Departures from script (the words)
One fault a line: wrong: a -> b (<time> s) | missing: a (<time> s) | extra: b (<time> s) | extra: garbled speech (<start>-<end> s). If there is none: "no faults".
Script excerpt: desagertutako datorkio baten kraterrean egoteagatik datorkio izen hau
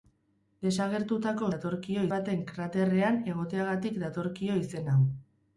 no faults